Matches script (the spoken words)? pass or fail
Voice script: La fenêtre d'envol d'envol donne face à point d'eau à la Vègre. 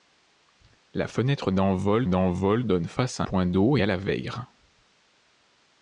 pass